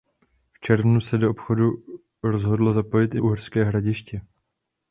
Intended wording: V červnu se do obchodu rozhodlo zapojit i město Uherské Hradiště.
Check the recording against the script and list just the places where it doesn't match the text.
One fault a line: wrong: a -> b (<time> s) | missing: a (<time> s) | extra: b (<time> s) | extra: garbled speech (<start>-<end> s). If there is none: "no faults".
missing: město (3.2 s)